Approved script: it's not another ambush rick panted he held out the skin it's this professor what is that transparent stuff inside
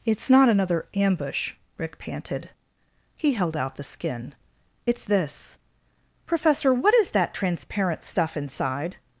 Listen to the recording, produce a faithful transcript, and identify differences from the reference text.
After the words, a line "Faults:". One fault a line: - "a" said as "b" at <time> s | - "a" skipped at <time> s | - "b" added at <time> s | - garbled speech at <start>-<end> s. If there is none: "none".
it's not another ambush rick panted he held out the skin it's this professor what is that transparent stuff inside
Faults:
none